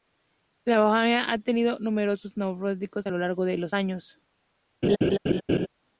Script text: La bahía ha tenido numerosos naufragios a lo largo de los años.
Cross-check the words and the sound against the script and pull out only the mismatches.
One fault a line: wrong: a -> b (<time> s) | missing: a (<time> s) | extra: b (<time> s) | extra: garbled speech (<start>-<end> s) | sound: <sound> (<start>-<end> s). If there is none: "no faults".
sound: laugh (4.8-5.7 s)